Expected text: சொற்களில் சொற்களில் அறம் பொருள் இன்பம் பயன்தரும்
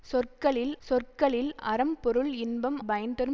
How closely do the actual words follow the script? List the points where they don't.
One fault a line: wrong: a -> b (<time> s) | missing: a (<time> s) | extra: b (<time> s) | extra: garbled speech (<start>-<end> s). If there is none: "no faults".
no faults